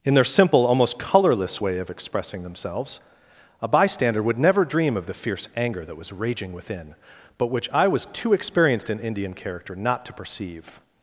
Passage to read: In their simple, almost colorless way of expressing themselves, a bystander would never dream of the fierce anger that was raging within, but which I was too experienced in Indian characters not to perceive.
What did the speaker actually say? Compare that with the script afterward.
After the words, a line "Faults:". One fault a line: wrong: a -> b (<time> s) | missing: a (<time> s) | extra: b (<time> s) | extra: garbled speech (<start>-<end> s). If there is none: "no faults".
In their simple, almost colorless way of expressing themselves, a bystander would never dream of the fierce anger that was raging within, but which I was too experienced in Indian character not to perceive.
Faults:
wrong: characters -> character (9.3 s)